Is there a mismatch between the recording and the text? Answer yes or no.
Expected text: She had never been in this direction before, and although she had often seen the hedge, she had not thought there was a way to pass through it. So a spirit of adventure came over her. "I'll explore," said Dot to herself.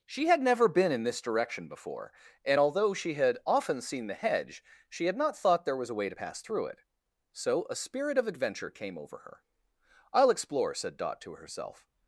no